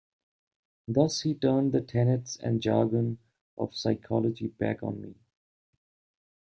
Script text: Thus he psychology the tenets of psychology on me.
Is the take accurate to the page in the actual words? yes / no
no